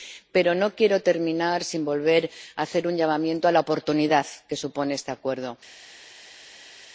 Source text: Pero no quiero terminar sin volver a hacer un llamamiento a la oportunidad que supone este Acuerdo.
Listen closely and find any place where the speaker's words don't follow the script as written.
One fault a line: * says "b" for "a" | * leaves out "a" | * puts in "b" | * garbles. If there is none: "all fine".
all fine